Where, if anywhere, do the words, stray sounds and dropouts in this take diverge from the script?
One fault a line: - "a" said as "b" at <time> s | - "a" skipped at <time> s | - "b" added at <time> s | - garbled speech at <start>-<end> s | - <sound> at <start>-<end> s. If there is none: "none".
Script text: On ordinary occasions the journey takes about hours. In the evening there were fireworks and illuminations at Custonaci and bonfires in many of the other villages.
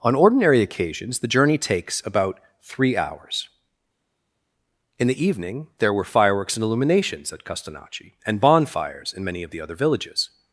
- "three" added at 2.6 s